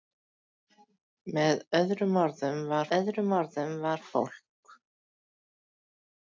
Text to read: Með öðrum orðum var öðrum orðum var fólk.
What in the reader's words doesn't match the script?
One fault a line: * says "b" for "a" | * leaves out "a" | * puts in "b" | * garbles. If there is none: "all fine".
all fine